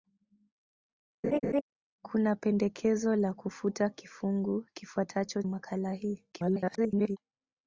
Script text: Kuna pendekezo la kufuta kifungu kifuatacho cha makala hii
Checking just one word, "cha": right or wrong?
wrong